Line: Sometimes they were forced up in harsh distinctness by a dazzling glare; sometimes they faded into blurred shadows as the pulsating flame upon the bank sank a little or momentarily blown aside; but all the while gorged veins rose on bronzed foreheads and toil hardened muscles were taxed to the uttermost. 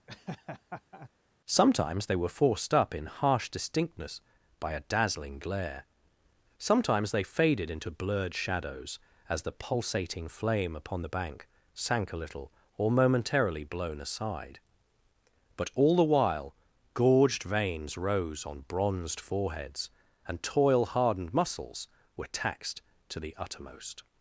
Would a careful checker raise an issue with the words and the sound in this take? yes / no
yes